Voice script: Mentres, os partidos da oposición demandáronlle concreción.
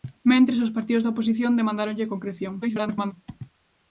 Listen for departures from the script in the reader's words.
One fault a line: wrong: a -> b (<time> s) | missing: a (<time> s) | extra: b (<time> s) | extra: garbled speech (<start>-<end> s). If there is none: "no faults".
extra: garbled speech (2.6-3.1 s)